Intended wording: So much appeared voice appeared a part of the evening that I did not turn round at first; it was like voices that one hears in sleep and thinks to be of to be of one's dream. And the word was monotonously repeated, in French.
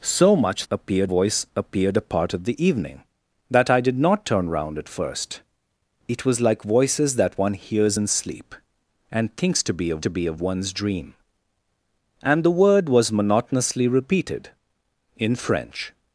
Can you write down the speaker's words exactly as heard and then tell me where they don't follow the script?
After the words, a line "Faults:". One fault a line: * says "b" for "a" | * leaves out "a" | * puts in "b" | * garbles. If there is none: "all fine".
So much appeared voice appeared a part of the evening that I did not turn round at first; it was like voices that one hears in sleep and thinks to be of to be of one's dream. And the word was monotonously repeated, in French.
Faults:
all fine